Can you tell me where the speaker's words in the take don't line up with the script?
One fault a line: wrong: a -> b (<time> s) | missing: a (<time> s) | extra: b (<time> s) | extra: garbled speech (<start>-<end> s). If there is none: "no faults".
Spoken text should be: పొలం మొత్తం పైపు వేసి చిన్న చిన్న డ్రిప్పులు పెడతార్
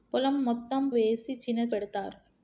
missing: పైపు (0.8 s)
missing: చిన్న డ్రిప్పులు (1.6 s)